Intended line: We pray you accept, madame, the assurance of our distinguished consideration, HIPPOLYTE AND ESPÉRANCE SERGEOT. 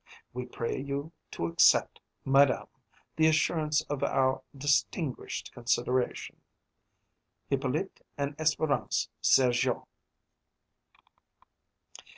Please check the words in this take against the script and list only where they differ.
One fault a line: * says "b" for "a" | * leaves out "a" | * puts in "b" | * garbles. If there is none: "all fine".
* puts in "to"